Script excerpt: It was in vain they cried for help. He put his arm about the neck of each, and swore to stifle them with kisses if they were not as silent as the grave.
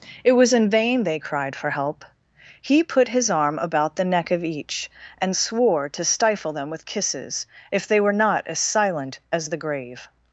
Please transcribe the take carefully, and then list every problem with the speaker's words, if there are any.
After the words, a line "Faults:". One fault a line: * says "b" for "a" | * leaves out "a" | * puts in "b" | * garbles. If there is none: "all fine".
It was in vain they cried for help. He put his arm about the neck of each, and swore to stifle them with kisses if they were not as silent as the grave.
Faults:
all fine